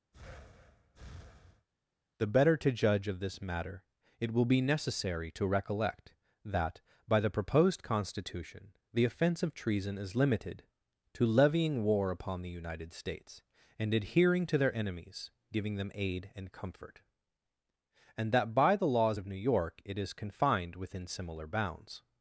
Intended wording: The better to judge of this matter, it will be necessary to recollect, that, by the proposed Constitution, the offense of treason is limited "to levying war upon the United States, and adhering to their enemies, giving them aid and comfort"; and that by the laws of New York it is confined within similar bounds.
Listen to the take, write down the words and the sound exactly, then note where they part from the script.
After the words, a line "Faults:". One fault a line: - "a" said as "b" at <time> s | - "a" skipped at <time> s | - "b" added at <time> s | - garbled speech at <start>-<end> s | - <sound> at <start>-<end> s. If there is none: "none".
The better to judge of this matter, it will be necessary to recollect, that, by the proposed Constitution, the offense of treason is limited "to levying war upon the United States, and adhering to their enemies, giving them aid and comfort"; and that by the laws of New York it is confined within similar bounds.
Faults:
- breath at 0.1-1.7 s